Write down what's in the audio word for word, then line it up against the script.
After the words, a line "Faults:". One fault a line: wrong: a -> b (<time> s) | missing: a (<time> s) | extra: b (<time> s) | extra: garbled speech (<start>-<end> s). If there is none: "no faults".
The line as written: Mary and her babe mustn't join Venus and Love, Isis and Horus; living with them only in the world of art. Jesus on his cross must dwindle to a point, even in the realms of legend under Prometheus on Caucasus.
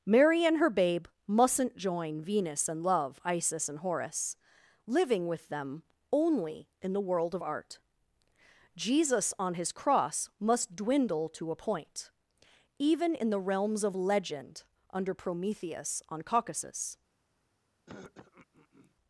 Mary and her babe mustn't join Venus and Love, Isis and Horus; living with them only in the world of art. Jesus on his cross must dwindle to a point, even in the realms of legend under Prometheus on Caucasus.
Faults:
no faults